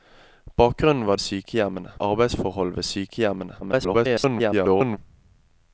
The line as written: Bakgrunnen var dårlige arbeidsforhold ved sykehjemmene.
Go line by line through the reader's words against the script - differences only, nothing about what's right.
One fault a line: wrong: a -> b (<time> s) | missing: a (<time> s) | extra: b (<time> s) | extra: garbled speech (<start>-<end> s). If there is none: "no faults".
wrong: dårlige -> sykehjemmene (1.2 s)
extra: garbled speech (3.6-5.0 s)